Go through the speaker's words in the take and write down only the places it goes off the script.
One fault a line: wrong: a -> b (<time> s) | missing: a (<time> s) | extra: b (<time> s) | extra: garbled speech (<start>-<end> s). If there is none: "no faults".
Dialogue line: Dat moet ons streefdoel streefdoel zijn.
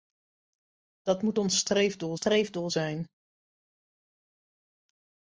no faults